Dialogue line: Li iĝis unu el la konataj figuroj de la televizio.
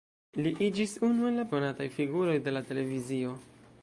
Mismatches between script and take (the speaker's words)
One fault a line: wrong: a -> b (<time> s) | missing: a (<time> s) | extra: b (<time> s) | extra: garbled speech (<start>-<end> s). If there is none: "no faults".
no faults